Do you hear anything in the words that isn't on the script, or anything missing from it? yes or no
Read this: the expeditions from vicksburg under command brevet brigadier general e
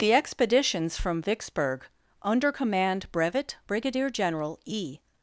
no